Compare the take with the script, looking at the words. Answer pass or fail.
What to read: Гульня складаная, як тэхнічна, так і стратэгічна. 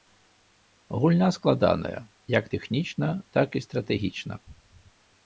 pass